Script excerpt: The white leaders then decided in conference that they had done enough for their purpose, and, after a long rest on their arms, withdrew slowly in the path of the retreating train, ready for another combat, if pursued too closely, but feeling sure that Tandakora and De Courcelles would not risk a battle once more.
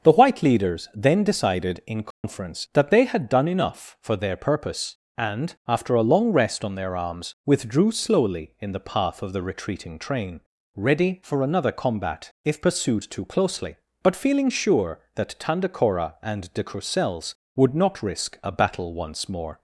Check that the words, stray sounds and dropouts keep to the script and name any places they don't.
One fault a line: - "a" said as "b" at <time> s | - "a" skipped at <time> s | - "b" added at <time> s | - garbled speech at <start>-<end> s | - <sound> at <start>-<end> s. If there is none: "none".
- dropout at 2.1-2.2 s